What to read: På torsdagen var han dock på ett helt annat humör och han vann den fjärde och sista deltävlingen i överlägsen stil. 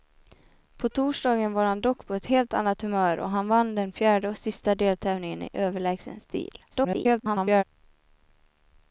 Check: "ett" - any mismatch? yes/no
no